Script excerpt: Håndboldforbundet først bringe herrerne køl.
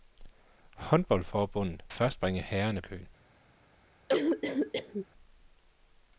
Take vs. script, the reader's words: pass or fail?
pass